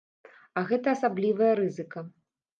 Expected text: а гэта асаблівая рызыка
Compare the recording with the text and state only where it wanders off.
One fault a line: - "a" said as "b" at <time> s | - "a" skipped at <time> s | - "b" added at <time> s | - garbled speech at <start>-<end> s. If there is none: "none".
none